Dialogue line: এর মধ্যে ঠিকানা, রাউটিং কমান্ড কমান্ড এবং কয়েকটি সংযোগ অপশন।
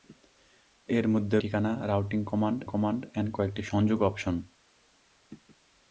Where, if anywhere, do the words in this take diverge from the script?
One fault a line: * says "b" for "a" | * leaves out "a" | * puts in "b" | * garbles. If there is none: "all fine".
all fine